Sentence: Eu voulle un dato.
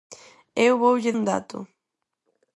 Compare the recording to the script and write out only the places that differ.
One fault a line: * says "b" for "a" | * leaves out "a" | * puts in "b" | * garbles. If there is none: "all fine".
all fine